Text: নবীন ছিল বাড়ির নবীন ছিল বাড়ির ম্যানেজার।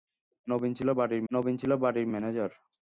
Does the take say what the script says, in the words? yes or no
yes